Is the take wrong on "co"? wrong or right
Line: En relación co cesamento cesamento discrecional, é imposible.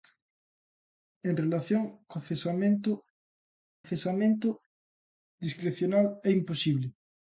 right